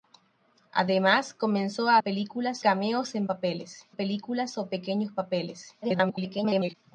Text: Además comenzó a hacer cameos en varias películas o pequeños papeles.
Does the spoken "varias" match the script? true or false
false